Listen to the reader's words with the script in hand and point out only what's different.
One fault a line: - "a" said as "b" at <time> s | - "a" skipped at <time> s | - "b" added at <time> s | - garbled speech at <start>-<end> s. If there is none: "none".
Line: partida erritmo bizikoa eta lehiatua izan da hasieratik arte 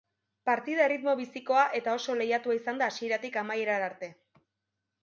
- "oso" added at 2.0 s
- "amaierara" added at 3.5 s